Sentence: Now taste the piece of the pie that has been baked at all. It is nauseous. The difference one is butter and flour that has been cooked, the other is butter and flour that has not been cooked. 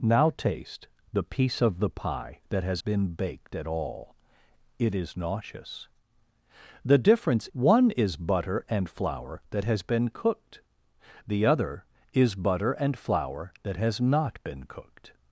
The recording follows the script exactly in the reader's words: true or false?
true